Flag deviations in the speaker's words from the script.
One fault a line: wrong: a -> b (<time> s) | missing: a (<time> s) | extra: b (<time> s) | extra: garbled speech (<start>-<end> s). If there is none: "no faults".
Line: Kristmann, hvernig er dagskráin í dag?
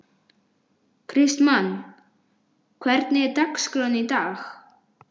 no faults